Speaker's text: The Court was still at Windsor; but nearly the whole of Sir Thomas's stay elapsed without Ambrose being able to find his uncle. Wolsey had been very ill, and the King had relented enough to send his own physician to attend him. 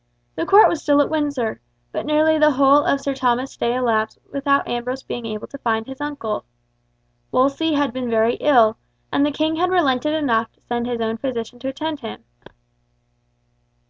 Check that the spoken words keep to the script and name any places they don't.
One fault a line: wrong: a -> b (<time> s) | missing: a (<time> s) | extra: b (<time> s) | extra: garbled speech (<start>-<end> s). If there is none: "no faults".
no faults